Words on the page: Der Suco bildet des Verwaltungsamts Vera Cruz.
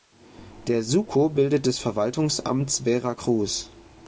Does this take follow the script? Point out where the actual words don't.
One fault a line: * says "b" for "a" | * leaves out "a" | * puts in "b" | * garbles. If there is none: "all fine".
all fine